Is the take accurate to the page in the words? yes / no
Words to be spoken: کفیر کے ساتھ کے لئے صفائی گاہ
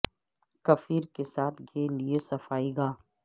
yes